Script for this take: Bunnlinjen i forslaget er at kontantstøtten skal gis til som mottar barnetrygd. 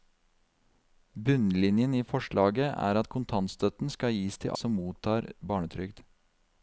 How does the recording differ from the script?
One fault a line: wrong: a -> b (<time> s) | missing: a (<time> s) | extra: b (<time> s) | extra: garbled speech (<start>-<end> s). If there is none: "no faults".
no faults